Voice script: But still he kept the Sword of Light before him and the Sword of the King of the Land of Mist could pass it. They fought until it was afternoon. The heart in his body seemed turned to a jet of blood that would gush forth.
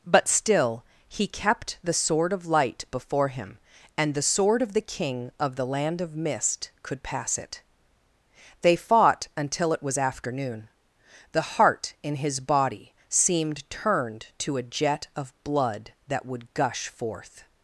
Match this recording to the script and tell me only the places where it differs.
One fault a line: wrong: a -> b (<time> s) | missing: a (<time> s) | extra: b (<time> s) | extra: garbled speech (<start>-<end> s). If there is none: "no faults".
no faults